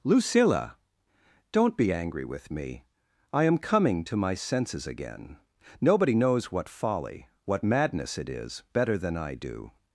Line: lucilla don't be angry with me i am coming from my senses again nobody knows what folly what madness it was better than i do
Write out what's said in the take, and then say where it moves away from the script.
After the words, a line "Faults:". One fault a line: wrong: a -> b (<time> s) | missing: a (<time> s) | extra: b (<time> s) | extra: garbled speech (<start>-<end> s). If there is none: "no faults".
lucilla don't be angry with me i am coming to my senses again nobody knows what folly what madness it is better than i do
Faults:
wrong: from -> to (4.0 s)
wrong: was -> is (8.3 s)